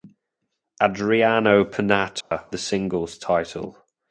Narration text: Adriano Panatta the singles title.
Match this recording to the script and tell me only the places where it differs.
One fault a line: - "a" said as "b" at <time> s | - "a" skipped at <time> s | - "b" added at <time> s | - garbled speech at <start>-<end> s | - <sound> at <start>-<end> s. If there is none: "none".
- dropout at 2.2-2.3 s